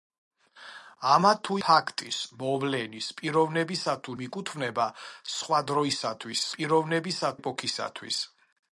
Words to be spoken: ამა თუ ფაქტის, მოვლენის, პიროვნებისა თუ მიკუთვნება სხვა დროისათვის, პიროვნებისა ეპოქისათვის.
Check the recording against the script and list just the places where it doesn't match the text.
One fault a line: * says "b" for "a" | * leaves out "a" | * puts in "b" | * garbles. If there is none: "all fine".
all fine